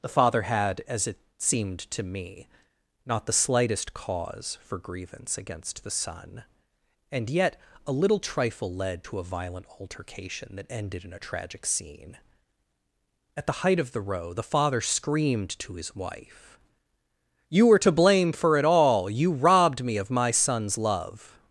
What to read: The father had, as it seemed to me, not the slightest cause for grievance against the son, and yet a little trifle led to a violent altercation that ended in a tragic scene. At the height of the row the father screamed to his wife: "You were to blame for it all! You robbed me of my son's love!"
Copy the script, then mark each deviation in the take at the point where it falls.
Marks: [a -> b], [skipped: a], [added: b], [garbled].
The father had, as it seemed to me, not the slightest cause for grievance against the son, and yet a little trifle led to a violent altercation that ended in a tragic scene. At the height of the row the father screamed to his wife: "You were to blame for it all! You robbed me of my son's love!"